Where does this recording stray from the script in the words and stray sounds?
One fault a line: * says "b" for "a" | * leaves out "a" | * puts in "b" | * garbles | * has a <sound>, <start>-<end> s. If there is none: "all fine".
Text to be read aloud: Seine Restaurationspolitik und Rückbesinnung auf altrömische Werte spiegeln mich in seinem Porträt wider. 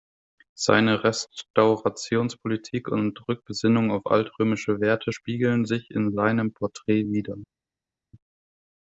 * says "sich" for "mich"